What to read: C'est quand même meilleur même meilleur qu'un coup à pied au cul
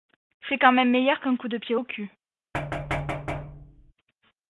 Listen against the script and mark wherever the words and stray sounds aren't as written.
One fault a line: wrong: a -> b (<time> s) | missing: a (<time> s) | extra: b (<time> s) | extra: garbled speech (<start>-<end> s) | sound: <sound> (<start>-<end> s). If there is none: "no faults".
missing: même meilleur (1.2 s)
wrong: à -> de (1.5 s)
sound: thud (2.5-3.9 s)